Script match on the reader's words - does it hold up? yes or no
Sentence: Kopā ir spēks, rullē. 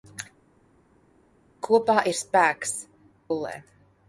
yes